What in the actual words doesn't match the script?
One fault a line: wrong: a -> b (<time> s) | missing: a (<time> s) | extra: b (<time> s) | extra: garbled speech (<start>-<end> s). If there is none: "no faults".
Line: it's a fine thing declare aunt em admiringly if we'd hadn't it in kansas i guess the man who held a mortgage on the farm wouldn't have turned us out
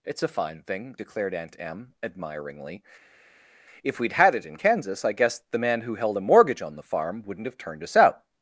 wrong: declare -> declared (1.0 s)
wrong: hadn't -> had (4.1 s)